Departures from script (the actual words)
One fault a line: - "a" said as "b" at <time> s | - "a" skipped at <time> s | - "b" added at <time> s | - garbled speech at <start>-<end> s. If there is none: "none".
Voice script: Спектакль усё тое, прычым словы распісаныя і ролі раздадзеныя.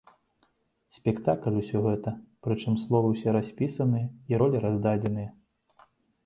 - "тое" said as "гэта" at 1.9 s
- "ўсе" added at 3.1 s